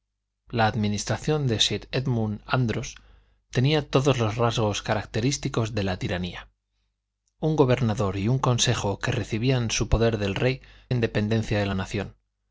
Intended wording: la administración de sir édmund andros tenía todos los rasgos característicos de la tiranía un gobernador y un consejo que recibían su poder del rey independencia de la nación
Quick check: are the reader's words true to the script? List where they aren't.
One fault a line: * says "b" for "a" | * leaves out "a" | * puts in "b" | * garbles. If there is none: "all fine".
all fine